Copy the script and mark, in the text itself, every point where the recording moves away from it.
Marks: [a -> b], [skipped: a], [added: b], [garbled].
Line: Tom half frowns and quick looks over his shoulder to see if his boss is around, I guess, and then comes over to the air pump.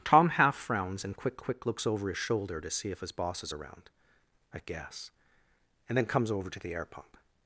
Tom half frowns and quick [added: quick] looks over his shoulder to see if his boss is around, I guess, and then comes over to the air pump.